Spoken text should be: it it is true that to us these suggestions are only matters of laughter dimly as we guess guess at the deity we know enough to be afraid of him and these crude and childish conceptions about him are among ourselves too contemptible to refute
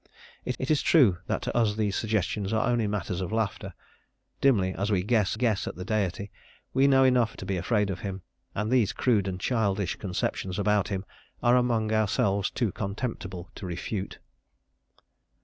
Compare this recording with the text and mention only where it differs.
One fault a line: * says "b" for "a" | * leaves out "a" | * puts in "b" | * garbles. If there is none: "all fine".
all fine